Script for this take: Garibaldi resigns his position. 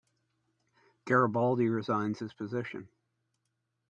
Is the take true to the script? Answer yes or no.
yes